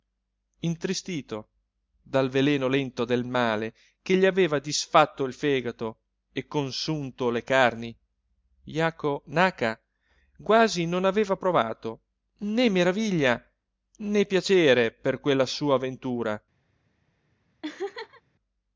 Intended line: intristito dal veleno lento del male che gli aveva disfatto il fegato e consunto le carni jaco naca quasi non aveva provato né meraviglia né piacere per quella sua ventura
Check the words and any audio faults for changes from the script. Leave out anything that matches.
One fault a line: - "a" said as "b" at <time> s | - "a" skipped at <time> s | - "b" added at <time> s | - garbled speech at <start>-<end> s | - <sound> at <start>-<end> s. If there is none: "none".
- laugh at 17.6-18.2 s